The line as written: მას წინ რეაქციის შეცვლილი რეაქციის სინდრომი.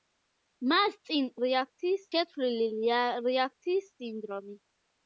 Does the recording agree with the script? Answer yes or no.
yes